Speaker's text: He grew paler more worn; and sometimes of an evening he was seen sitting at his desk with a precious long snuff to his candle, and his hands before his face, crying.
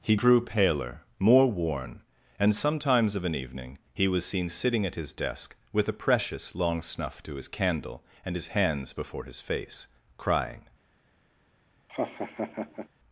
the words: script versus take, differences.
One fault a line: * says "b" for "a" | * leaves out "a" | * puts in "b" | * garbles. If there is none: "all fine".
all fine